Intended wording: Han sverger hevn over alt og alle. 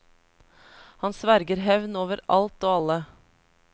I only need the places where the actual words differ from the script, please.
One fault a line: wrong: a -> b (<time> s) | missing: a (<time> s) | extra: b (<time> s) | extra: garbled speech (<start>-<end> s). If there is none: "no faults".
no faults